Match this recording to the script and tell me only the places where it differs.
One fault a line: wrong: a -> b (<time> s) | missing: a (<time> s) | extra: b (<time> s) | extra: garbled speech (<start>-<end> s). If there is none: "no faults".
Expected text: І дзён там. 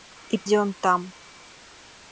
no faults